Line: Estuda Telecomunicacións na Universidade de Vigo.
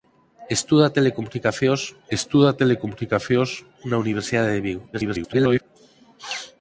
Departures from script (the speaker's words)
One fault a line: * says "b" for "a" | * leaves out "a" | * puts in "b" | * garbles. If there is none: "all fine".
* puts in "estuda Telecomunicacións"
* garbles